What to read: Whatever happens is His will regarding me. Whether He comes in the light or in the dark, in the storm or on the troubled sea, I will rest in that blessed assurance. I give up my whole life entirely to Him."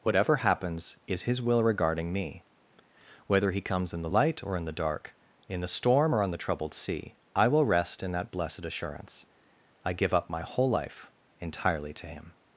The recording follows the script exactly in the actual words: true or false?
true